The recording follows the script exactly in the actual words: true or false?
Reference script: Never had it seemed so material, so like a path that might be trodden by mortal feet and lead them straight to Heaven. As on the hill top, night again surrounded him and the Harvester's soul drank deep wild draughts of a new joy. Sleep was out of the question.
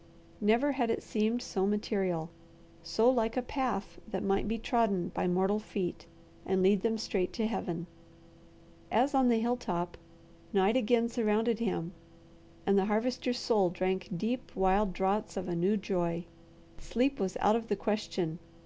true